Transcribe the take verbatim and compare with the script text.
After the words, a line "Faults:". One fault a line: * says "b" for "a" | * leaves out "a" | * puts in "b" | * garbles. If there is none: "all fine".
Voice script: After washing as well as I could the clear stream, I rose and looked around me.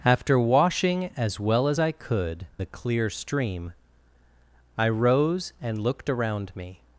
After washing as well as I could the clear stream, I rose and looked around me.
Faults:
all fine